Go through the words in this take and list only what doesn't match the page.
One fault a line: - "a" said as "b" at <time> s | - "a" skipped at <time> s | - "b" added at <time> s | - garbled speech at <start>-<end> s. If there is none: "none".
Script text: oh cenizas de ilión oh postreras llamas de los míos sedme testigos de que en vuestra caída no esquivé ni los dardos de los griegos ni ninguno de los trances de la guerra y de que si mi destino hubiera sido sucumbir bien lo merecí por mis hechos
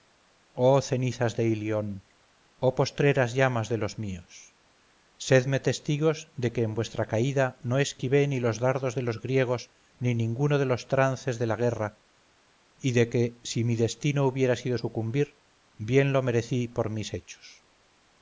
none